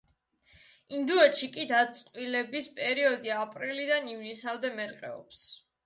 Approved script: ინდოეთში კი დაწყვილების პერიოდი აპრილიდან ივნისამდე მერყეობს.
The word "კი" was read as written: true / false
true